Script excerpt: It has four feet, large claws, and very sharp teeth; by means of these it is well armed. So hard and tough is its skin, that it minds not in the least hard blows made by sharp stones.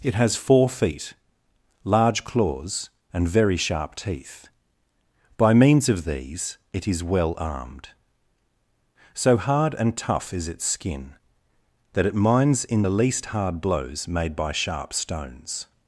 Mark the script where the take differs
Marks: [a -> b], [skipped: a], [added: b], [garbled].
It has four feet, large claws, and very sharp teeth; by means of these it is well armed. So hard and tough is its skin, that it minds [skipped: not] in the least hard blows made by sharp stones.